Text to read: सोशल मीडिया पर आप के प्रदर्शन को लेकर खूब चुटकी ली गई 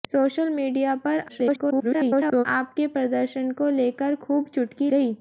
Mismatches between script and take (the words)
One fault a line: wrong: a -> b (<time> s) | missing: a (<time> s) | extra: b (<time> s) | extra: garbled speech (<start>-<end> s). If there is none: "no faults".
extra: garbled speech (1.3-2.4 s)
missing: ली (4.9 s)